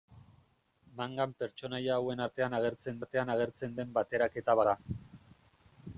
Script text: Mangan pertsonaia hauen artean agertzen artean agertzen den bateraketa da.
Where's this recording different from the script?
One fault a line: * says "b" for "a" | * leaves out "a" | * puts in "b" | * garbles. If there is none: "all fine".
all fine